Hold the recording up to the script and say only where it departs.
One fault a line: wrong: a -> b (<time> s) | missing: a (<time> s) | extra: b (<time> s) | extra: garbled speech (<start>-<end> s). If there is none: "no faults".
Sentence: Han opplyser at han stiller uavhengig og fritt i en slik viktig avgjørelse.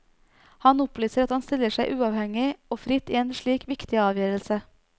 extra: seg (1.8 s)